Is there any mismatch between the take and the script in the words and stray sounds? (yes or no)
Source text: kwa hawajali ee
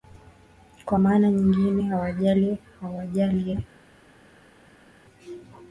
yes